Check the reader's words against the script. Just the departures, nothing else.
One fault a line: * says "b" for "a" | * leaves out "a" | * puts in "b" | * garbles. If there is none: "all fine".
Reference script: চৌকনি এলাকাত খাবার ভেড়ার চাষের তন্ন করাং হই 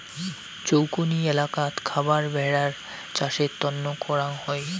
all fine